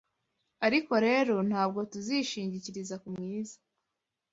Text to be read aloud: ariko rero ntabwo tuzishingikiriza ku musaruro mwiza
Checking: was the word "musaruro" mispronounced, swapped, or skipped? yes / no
yes